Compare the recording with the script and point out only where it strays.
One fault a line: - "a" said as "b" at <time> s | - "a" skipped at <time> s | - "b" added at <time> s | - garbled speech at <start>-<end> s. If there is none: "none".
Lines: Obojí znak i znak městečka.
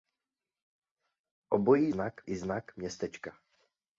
none